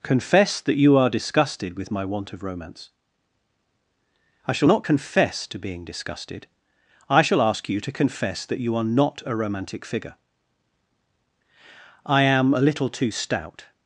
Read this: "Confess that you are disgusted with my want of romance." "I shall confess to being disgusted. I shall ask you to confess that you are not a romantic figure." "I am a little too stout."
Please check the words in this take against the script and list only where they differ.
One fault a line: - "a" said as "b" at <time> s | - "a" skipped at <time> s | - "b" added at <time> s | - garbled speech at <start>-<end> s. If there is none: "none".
- "not" added at 4.7 s